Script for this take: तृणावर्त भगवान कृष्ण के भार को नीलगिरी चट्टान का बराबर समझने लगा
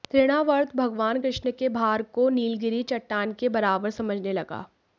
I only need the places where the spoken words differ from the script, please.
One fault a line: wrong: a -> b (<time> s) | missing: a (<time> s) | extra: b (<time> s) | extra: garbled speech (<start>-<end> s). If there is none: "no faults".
wrong: का -> के (3.3 s)